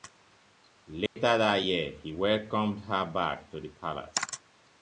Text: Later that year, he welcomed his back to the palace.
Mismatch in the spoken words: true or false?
true